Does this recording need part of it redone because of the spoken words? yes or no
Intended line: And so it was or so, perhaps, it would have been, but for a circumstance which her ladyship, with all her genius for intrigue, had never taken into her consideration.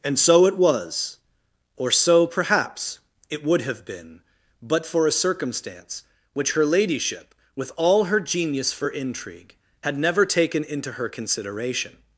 no